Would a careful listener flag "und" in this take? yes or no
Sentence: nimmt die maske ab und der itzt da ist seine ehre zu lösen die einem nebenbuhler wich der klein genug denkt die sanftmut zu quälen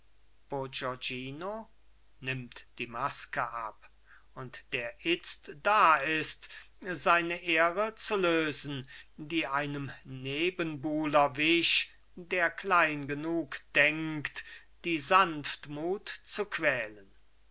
no